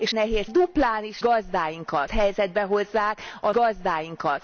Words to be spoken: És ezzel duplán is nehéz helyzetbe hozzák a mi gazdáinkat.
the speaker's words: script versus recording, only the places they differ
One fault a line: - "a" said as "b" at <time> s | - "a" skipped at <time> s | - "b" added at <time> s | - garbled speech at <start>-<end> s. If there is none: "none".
- "ezzel" said as "nehéz" at 0.1 s
- "nehéz" said as "gazdáinkat" at 1.2 s
- "mi" skipped at 3.5 s